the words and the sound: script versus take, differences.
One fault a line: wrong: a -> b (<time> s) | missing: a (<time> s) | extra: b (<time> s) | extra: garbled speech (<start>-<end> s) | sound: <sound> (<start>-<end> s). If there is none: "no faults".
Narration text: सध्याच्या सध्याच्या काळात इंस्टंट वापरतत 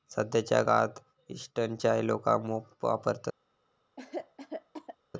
missing: सध्याच्या (0.6 s)
extra: चाय लोका मोप (1.8 s)
sound: cough (4.0-5.0 s)